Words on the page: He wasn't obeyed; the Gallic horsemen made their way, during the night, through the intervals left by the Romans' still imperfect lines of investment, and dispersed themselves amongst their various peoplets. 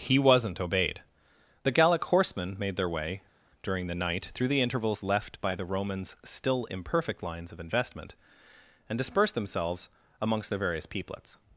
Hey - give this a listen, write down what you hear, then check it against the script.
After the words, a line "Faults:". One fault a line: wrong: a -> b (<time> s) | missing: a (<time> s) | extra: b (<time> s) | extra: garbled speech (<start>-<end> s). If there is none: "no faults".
He wasn't obeyed; the Gallic horsemen made their way, during the night, through the intervals left by the Romans' still imperfect lines of investment, and dispersed themselves amongst their various peoplets.
Faults:
no faults